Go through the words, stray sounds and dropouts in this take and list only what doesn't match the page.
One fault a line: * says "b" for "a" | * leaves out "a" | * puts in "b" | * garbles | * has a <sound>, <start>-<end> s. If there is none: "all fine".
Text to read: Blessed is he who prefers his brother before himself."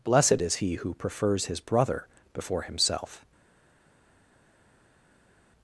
all fine